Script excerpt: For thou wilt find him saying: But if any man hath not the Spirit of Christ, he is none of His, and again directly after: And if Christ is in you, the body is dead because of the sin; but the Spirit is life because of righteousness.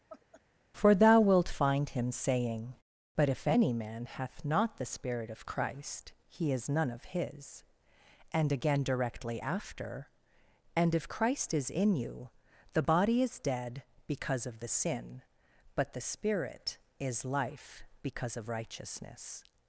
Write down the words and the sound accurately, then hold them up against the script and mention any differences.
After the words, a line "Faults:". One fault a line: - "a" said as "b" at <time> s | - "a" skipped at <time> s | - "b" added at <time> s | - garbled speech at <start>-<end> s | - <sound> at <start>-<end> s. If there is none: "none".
For thou wilt find him saying: But if any man hath not the Spirit of Christ, he is none of His, and again directly after: And if Christ is in you, the body is dead because of the sin; but the Spirit is life because of righteousness.
Faults:
- laugh at 0.1-0.4 s